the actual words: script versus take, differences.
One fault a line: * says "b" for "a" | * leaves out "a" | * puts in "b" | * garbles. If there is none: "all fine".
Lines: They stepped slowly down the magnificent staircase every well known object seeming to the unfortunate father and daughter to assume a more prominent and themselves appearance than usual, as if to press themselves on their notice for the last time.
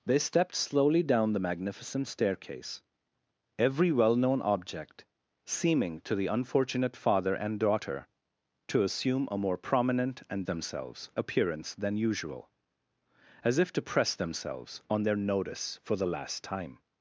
all fine